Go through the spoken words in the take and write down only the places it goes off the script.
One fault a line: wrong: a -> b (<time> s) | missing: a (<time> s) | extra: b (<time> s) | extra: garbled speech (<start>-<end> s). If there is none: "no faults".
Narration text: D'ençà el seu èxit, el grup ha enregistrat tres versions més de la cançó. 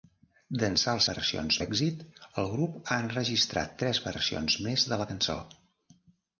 wrong: seu -> versions (1.1 s)